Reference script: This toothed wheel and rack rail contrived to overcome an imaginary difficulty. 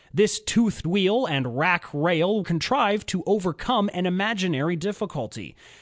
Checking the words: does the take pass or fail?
pass